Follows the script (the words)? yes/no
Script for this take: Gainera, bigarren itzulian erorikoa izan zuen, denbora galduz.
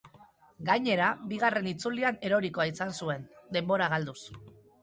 yes